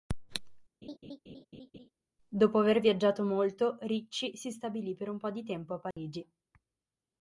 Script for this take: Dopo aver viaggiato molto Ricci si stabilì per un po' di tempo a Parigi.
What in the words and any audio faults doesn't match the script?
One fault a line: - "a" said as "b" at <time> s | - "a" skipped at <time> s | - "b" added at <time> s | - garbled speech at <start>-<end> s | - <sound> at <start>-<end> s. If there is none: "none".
- laugh at 0.8-1.9 s
- dropout at 5.9-6.0 s